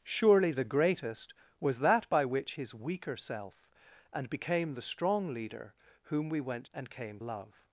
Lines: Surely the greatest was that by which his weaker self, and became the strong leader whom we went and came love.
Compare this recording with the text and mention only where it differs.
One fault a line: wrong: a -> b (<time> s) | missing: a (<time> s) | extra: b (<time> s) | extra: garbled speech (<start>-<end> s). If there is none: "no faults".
no faults